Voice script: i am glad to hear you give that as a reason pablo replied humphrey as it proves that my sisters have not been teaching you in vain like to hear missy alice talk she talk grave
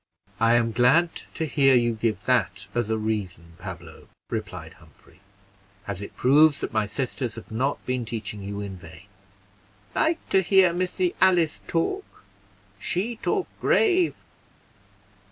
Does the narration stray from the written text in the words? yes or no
no